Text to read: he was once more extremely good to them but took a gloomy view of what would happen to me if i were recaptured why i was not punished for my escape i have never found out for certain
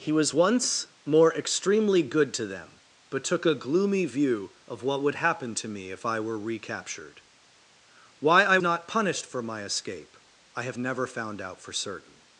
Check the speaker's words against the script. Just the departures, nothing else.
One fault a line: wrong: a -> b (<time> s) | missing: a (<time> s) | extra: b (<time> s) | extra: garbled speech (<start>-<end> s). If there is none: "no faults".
missing: was (8.6 s)